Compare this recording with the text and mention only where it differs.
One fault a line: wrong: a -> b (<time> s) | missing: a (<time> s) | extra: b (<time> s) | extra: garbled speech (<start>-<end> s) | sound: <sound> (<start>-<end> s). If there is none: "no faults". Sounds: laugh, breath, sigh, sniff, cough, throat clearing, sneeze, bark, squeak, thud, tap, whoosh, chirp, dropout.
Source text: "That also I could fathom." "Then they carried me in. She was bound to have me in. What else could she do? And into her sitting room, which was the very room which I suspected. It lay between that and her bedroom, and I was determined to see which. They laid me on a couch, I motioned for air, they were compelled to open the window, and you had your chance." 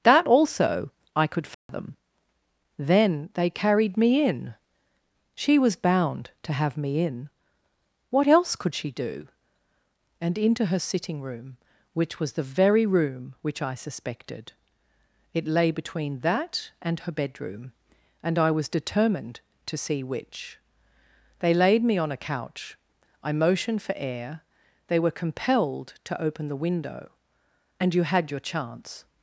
sound: dropout (1.5-1.7 s)